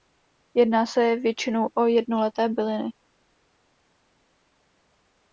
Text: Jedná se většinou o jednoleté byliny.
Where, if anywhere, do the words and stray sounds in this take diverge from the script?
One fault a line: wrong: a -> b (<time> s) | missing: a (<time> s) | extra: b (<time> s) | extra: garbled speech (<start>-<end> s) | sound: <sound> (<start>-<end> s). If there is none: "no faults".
no faults